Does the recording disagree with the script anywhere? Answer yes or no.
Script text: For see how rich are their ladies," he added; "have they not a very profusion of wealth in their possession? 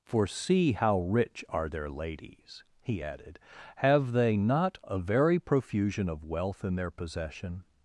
no